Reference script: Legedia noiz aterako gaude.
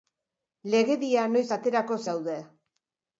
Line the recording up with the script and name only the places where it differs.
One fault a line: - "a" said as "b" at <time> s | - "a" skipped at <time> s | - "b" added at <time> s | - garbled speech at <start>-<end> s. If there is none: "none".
none